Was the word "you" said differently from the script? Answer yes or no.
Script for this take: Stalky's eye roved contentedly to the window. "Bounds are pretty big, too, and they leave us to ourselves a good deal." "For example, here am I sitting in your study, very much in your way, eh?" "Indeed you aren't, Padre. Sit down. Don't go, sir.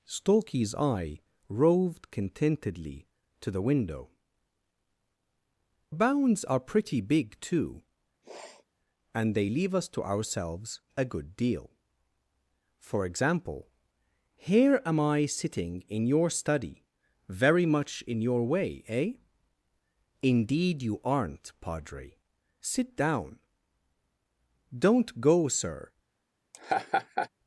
no